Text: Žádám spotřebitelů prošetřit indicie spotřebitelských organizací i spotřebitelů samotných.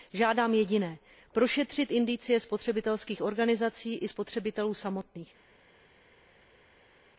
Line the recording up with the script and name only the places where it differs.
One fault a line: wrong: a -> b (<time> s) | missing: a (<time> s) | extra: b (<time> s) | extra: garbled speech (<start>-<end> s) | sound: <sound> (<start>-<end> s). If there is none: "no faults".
wrong: spotřebitelů -> jediné (0.5 s)